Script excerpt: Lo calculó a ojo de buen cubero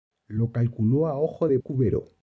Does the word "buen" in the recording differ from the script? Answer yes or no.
yes